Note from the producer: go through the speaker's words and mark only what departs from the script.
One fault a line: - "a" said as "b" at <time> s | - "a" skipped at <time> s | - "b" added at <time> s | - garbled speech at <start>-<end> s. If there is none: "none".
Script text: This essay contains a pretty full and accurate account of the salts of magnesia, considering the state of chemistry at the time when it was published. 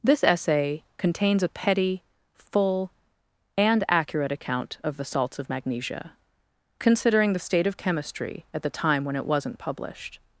- "pretty" said as "petty" at 1.5 s
- "was" said as "wasn't" at 9.2 s